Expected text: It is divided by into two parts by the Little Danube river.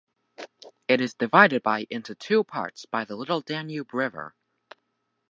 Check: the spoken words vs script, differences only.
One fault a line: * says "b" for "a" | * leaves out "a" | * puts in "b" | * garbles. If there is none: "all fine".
all fine